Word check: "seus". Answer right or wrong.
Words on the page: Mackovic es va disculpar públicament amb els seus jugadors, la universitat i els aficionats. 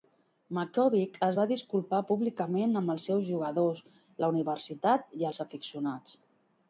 right